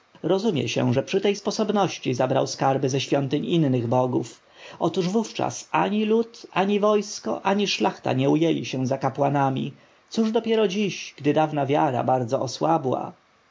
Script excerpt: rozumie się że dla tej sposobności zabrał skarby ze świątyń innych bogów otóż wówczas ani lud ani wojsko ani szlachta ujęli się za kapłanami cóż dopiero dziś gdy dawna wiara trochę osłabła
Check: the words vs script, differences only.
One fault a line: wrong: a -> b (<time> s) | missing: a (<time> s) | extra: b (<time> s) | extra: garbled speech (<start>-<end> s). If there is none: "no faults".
wrong: dla -> przy (1.0 s)
extra: nie (8.1 s)
wrong: trochę -> bardzo (12.0 s)